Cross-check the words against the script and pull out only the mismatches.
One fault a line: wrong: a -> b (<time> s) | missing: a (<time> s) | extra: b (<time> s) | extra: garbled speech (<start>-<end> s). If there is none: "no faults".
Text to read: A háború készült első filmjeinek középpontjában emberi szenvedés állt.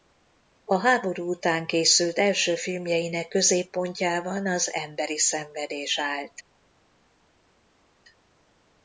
extra: után (1.3 s)
extra: az (4.5 s)